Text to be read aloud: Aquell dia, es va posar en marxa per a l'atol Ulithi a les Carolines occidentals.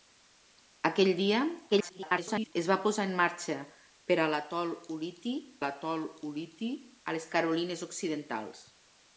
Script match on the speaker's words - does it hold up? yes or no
no